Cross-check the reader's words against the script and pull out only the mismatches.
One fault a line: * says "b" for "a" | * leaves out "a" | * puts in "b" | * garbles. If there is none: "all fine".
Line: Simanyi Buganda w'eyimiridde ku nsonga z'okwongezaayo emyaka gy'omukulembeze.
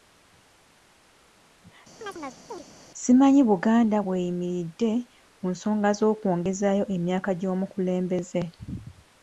all fine